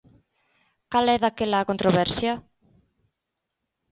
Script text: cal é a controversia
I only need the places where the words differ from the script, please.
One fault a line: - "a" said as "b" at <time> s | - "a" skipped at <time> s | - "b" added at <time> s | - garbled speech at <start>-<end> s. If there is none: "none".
- "daquela" added at 1.2 s